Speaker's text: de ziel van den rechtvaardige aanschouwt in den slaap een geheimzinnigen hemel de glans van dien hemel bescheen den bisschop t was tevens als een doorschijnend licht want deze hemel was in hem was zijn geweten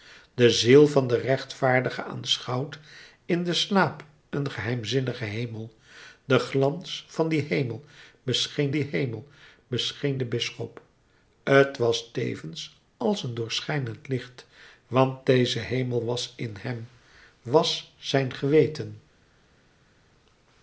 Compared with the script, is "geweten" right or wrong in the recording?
right